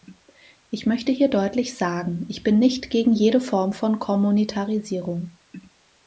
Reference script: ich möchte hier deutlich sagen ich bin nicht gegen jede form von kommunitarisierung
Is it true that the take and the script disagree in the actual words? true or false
false